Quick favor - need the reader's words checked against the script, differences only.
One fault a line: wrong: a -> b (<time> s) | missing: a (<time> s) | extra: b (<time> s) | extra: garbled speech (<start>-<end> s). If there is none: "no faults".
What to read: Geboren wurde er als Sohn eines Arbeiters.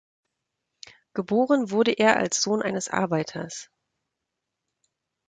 no faults